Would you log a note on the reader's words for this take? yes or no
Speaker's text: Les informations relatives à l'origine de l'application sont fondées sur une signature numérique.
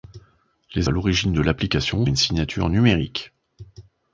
yes